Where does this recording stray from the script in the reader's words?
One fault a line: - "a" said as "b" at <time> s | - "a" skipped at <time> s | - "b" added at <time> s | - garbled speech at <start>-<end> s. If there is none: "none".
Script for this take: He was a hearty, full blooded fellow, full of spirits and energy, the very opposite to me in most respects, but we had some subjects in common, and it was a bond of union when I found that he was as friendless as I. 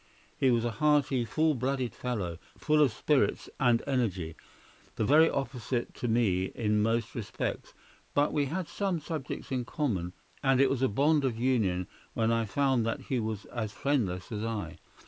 none